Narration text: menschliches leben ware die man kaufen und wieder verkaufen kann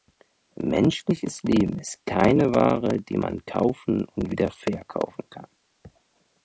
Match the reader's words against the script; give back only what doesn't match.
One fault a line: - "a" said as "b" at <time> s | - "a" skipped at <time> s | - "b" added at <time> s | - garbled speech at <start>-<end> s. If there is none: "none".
- "ist keine" added at 1.8 s